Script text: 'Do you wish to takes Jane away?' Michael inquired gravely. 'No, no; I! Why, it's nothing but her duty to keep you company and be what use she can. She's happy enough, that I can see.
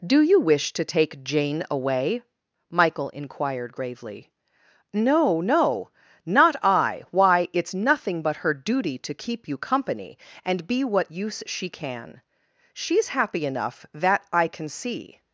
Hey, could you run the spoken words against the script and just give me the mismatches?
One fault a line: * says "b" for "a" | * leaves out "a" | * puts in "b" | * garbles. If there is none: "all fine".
* says "take" for "takes"
* puts in "not"